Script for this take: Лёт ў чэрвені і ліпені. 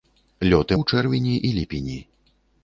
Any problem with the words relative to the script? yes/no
no